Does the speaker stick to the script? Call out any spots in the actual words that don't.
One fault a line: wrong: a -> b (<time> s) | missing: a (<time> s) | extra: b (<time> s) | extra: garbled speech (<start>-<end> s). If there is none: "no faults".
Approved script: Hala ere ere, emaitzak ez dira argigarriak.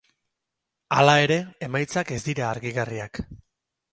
missing: ere (1.4 s)